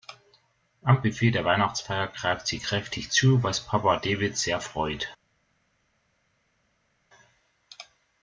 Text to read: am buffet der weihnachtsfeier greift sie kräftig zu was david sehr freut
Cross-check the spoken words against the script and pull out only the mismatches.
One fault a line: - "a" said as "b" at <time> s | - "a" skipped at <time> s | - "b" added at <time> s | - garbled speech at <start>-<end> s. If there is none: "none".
- "papa" added at 3.7 s